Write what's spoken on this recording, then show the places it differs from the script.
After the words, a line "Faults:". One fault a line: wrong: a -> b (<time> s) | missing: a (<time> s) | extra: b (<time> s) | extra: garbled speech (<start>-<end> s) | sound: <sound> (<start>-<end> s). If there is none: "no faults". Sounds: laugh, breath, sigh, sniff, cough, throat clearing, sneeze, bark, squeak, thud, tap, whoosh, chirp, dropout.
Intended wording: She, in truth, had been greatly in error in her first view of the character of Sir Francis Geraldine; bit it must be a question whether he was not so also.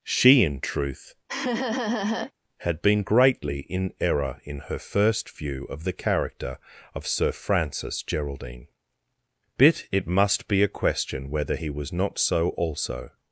She, in truth, had been greatly in error in her first view of the character of Sir Francis Geraldine; bit it must be a question whether he was not so also.
Faults:
sound: laugh (1.3-2.3 s)